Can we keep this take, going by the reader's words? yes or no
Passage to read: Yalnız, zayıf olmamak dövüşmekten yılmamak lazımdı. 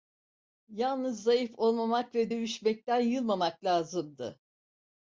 no